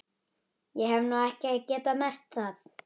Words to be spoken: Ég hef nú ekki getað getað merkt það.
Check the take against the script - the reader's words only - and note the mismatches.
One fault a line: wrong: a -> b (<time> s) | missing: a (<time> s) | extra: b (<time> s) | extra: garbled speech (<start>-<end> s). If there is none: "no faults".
missing: getað (2.0 s)